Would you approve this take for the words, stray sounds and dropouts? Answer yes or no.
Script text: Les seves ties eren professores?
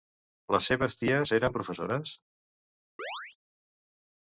no